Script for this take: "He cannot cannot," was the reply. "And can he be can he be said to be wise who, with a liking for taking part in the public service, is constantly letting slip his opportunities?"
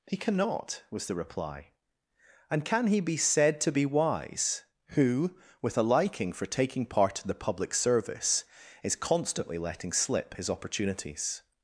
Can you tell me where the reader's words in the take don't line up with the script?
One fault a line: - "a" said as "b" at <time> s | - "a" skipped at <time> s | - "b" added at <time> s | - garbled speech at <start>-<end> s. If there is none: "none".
- "cannot" skipped at 0.8 s
- "can he be" skipped at 3.2 s